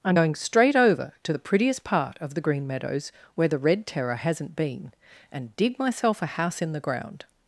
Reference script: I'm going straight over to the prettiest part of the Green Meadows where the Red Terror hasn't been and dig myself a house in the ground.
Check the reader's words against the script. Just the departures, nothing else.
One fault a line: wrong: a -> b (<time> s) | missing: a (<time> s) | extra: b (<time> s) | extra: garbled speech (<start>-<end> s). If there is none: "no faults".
no faults